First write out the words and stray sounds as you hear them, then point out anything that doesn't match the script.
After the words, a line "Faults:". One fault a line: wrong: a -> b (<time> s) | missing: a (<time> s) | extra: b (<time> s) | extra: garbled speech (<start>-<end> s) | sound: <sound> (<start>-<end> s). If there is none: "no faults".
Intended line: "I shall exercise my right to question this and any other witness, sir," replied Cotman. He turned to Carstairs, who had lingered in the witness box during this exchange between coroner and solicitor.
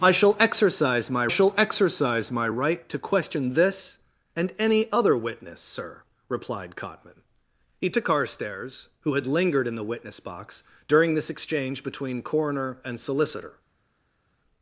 "I shall exercise my shall exercise my right to question this and any other witness, sir," replied Cotman. He to Carstairs, who had lingered in the witness box during this exchange between coroner and solicitor.
Faults:
extra: shall exercise my (1.3 s)
missing: turned (7.9 s)